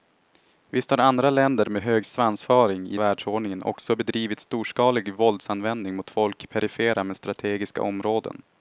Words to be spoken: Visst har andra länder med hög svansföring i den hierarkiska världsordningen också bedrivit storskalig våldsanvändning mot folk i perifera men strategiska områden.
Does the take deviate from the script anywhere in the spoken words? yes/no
yes